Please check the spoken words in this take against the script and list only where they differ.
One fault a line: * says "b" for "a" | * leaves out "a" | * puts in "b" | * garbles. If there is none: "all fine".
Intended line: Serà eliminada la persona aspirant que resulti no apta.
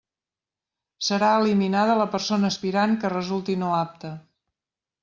all fine